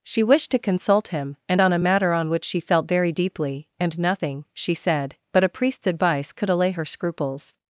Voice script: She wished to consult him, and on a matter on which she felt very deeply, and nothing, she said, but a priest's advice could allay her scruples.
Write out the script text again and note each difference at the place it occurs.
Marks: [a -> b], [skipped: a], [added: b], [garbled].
She wished to consult him, and on a matter on which she felt very deeply, and nothing, she said, but a priest's advice could allay her scruples.